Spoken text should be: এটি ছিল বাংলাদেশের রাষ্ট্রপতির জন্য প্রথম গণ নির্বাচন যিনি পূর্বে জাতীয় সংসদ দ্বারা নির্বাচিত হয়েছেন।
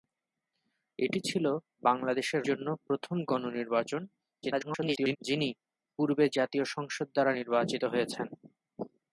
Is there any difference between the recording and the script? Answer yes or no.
yes